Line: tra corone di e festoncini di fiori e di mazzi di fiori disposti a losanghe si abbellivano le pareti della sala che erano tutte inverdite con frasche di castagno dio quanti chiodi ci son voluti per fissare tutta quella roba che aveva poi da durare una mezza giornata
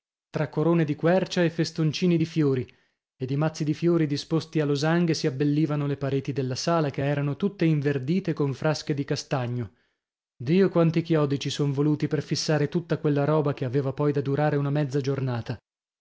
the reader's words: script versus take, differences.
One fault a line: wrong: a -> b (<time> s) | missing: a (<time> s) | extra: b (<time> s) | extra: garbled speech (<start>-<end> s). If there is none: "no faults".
extra: quercia (0.9 s)